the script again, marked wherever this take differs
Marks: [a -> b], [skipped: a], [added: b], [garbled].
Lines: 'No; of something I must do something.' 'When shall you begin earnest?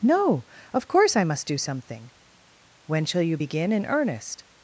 'No; of [something -> course] I must do something.' 'When shall you begin [added: in] earnest?